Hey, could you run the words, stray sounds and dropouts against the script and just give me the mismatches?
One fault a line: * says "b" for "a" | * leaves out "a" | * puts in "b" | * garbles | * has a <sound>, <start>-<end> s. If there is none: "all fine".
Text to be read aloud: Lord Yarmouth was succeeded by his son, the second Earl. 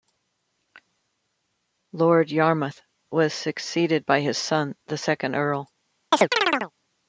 * has a chirp, 6.1-6.7 s